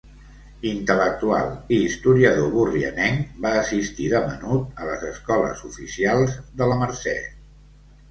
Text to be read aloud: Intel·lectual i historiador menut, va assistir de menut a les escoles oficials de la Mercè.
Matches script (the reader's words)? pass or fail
fail